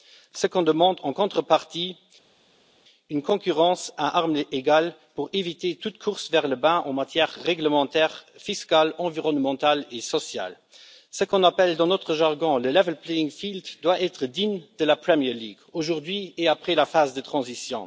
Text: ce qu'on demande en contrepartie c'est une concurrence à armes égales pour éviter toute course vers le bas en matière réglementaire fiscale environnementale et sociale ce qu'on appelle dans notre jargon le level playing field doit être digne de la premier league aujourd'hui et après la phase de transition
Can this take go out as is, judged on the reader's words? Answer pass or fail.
pass